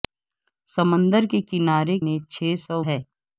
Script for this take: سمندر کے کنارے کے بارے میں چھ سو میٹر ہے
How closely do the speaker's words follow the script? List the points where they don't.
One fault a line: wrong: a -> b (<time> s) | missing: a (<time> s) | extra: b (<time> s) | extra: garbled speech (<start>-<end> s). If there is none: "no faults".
missing: کے بارے (2.0 s)
missing: میٹر (2.8 s)